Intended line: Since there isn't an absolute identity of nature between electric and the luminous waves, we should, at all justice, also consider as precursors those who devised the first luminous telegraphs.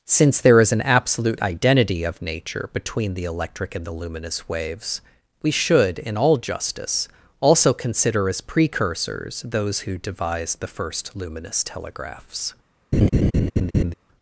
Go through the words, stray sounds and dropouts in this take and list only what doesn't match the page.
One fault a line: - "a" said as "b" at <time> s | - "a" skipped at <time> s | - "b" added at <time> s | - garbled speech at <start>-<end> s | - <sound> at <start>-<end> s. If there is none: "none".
- "isn't" said as "is" at 0.6 s
- "the" added at 3.1 s
- "at" said as "in" at 6.0 s
- laugh at 12.9-13.9 s